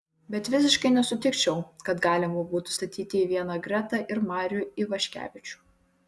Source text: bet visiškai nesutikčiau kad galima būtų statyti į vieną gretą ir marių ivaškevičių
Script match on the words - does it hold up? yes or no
yes